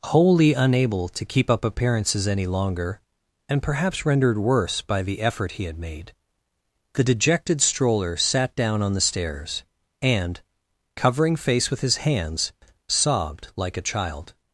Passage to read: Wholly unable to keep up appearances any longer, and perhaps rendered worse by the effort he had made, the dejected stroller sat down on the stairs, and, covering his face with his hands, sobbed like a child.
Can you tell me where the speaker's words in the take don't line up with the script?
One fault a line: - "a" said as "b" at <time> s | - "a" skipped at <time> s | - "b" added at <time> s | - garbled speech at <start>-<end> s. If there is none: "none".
- "his" skipped at 11.4 s